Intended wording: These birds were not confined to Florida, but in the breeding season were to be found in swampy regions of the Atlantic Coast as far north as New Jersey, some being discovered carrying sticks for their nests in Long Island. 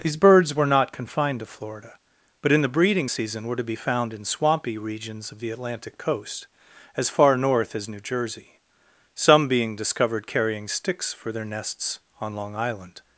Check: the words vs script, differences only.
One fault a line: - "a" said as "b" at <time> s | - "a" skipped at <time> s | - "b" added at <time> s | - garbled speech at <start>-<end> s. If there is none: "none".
- "in" said as "on" at 12.2 s